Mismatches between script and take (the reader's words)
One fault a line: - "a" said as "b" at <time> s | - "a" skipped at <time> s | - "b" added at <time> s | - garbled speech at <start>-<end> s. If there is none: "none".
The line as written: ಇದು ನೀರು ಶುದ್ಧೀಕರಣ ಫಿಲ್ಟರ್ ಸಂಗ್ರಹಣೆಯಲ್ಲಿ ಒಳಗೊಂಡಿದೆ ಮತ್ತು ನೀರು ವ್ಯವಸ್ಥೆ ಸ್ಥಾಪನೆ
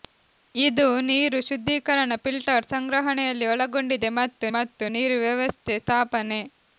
- "ಮತ್ತು" added at 4.6 s